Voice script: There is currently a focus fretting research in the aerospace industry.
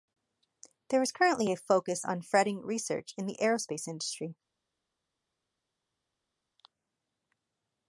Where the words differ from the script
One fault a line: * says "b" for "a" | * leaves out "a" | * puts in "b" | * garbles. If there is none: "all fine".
* puts in "on"